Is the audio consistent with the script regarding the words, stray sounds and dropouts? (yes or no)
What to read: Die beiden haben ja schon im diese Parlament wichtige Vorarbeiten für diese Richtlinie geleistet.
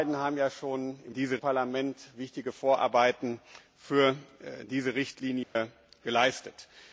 no